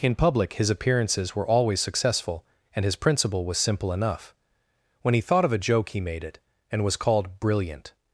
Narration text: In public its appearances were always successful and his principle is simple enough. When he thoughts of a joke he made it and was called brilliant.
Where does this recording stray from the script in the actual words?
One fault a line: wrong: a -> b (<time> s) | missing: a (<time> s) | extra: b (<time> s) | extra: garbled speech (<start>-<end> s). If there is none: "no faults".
wrong: its -> his (0.5 s)
wrong: is -> was (3.5 s)
wrong: thoughts -> thought (5.2 s)